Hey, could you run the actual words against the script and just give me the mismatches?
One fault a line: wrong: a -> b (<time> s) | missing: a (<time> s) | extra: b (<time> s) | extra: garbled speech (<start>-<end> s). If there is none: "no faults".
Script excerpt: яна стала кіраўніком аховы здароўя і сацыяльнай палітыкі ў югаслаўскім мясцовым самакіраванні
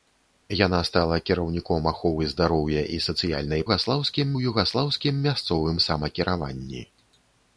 wrong: палітыкі -> югаслаўскім (3.7 s)